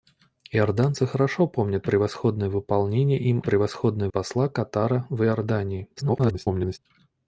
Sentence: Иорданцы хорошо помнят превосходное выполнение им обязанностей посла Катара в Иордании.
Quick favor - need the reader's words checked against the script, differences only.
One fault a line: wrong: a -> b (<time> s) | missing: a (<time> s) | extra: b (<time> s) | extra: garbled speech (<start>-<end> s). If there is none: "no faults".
wrong: обязанностей -> превосходное (3.4 s)
extra: garbled speech (6.0-6.8 s)